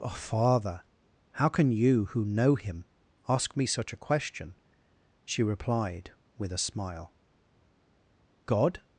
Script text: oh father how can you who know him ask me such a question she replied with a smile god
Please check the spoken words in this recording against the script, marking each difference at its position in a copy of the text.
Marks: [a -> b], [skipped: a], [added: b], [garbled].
oh father how can you who know him ask me such a question she replied with a smile god